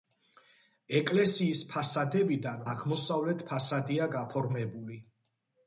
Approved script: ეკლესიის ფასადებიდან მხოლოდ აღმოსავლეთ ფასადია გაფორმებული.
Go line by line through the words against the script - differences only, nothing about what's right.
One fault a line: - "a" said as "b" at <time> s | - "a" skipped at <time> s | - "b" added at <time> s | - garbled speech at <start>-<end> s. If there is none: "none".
- "მხოლოდ" skipped at 2.6 s